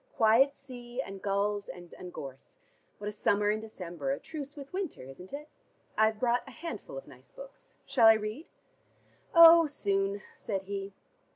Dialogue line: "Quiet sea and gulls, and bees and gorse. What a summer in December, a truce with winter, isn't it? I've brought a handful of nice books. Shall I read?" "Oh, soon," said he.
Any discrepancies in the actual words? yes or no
yes